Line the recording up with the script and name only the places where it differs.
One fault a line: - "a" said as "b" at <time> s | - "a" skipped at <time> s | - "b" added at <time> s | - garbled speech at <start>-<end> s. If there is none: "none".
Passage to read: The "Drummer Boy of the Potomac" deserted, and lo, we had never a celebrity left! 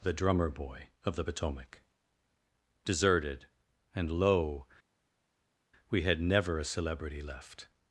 none